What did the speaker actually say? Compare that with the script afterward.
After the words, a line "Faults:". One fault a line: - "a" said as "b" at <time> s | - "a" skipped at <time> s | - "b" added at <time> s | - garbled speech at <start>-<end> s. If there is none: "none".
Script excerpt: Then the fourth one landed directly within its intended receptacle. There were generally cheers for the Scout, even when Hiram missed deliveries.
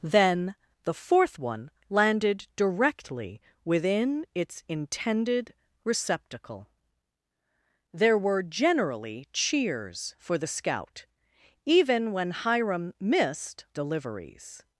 Then the fourth one landed directly within its intended receptacle. There were generally cheers for the Scout, even when Hiram missed deliveries.
Faults:
none